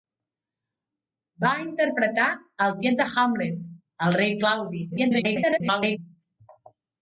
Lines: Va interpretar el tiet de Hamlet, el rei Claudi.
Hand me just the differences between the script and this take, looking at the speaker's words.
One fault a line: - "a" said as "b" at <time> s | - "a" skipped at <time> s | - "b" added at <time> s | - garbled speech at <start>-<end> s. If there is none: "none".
- garbled speech at 4.9-6.0 s